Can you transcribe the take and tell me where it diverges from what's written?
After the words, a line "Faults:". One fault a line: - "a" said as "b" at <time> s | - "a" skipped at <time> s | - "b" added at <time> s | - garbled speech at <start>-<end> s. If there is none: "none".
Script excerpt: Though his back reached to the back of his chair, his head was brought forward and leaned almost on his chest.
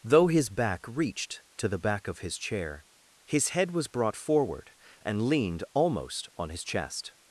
Though his back reached to the back of his chair, his head was brought forward and leaned almost on his chest.
Faults:
none